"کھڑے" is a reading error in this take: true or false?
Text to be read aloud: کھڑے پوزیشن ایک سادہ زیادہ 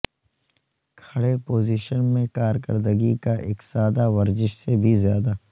false